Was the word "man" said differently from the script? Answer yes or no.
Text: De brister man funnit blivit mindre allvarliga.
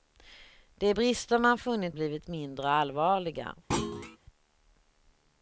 no